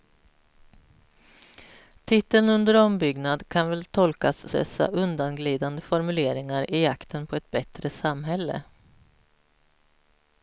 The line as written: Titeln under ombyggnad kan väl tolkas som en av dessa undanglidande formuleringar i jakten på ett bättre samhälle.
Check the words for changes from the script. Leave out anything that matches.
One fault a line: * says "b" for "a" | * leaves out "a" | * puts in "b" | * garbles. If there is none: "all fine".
* leaves out "som en av"